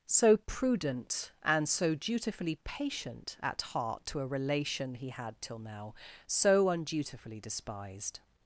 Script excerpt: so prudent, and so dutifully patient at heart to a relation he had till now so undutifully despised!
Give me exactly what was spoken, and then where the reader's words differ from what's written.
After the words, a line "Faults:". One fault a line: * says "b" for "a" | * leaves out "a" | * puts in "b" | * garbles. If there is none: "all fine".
so prudent, and so dutifully patient at heart to a relation he had till now so undutifully despised!
Faults:
all fine